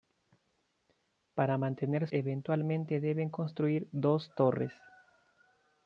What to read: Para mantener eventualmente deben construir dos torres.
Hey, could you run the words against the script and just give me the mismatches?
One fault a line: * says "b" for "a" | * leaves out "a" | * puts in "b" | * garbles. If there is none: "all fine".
all fine